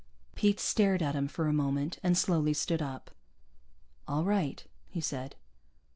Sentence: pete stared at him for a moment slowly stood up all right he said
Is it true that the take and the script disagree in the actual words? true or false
true